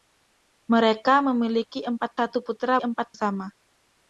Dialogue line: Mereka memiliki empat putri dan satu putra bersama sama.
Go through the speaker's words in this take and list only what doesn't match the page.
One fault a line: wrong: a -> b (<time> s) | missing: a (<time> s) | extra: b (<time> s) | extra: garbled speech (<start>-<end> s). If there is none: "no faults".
missing: putri dan (2.2 s)
wrong: bersama -> empat (2.8 s)